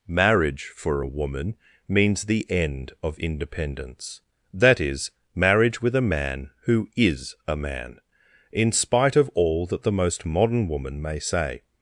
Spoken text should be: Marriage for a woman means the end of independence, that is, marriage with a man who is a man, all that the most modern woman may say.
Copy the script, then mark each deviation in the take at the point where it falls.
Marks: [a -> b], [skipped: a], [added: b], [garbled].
Marriage for a woman means the end of independence, that is, marriage with a man who is a man, [added: in spite of] all that the most modern woman may say.